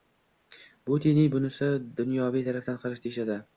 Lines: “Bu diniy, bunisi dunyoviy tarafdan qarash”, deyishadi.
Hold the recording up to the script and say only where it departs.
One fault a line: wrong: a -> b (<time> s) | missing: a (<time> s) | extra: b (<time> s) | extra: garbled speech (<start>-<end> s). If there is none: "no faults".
no faults